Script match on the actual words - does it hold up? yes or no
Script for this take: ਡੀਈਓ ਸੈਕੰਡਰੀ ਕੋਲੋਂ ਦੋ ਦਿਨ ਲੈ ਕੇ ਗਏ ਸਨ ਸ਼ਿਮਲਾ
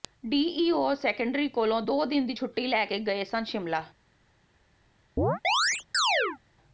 no